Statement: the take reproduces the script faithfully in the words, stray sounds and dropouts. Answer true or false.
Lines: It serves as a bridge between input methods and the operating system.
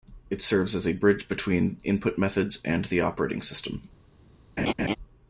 false